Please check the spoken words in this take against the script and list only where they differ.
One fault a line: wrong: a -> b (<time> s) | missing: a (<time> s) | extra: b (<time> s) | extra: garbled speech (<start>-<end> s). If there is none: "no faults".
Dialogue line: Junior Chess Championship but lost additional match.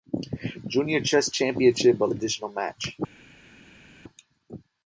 missing: lost (2.1 s)